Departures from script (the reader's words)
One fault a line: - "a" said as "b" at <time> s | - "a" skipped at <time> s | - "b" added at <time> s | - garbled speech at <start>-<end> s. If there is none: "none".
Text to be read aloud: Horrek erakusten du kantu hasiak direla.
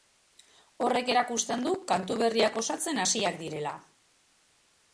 - "berriak osatzen" added at 2.2 s